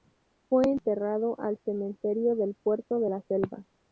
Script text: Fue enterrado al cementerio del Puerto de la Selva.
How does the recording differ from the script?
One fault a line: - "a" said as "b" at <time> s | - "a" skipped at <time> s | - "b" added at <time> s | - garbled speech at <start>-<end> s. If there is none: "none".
none